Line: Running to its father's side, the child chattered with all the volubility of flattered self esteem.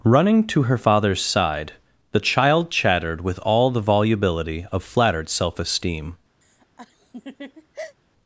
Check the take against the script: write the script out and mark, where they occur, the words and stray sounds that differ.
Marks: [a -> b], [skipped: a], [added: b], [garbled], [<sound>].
Running to [its -> her] father's side, the child chattered with all the volubility of flattered self esteem. [laugh]